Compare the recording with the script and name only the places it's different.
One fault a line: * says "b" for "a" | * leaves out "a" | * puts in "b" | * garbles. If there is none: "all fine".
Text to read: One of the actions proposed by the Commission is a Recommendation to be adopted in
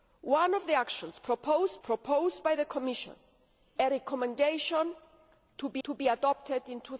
* puts in "proposed"
* leaves out "is"
* puts in "to be"